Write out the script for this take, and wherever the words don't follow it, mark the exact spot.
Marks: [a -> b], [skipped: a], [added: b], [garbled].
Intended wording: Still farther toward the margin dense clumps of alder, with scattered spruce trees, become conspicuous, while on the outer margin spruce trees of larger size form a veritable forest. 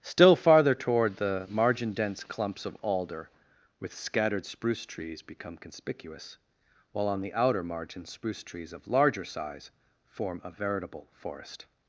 Still farther toward the margin dense clumps of alder, with scattered spruce trees, become conspicuous, while on the outer margin spruce trees of larger size form a veritable forest.